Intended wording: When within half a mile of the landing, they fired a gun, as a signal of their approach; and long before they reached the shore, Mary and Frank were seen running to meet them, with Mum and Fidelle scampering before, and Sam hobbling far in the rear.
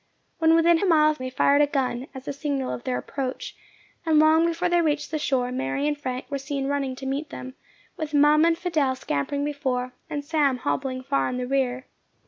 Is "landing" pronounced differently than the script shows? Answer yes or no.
yes